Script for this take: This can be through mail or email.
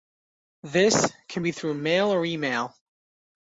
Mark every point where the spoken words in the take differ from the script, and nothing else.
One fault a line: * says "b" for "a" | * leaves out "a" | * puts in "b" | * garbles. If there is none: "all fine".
all fine